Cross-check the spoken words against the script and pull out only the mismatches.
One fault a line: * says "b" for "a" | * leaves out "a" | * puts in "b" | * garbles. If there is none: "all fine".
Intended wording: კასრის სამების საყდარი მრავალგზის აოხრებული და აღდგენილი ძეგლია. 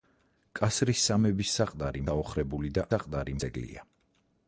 * leaves out "მრავალგზის"
* says "საყდარი" for "აღდგენილი"